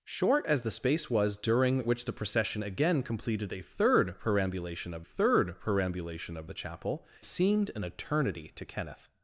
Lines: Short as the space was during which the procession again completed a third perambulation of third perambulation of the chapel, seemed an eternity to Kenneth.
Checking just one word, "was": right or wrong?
right